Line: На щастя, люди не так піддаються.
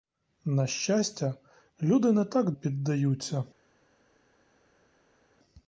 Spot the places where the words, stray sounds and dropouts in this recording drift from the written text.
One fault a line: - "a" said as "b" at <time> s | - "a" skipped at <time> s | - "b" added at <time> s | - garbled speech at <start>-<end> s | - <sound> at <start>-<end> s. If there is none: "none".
none